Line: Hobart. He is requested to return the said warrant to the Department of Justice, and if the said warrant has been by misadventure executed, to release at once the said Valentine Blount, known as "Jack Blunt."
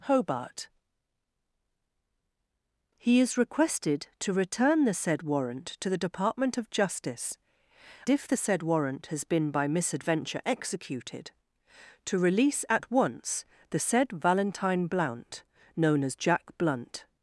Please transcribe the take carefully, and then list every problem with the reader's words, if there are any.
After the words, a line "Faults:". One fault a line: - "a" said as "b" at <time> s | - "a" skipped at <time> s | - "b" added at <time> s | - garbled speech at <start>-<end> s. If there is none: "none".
Hobart. He is requested to return the said warrant to the Department of Justice, if the said warrant has been by misadventure executed, to release at once the said Valentine Blount, known as "Jack Blunt."
Faults:
- "and" skipped at 7.4 s